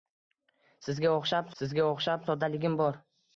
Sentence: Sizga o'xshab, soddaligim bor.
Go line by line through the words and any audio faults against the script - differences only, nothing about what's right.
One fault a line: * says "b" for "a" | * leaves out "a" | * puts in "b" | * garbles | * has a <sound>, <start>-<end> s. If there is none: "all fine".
* puts in "sizga o'xshab"